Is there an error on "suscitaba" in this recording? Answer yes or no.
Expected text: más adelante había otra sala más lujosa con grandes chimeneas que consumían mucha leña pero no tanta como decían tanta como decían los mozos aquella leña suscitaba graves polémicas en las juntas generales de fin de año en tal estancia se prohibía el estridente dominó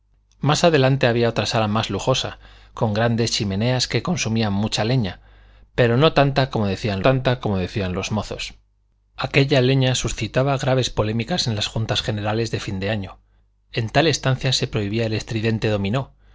no